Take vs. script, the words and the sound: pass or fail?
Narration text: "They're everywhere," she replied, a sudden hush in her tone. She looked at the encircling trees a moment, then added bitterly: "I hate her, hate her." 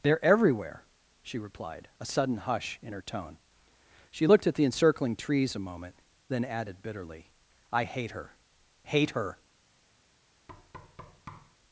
fail